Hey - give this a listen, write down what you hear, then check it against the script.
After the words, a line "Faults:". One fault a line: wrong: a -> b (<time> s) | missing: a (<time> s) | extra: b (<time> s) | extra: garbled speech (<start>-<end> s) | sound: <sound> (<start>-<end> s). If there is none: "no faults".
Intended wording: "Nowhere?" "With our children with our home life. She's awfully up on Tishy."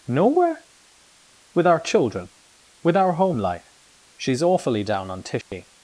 "Nowhere?" "With our children with our home life. She's awfully down on Tishy."
Faults:
wrong: up -> down (4.8 s)
sound: dropout (5.4-5.5 s)